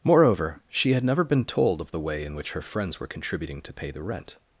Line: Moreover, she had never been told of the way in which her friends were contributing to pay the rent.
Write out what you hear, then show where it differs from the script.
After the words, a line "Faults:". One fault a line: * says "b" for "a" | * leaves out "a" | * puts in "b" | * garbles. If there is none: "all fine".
Moreover, she had never been told of the way in which her friends were contributing to pay the rent.
Faults:
all fine